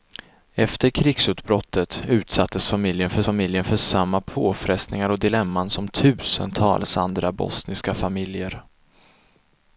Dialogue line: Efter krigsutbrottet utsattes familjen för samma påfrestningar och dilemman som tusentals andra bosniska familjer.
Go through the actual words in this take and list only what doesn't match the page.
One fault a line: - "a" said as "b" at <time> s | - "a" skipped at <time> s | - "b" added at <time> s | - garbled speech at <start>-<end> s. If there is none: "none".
- "familjen för" added at 3.2 s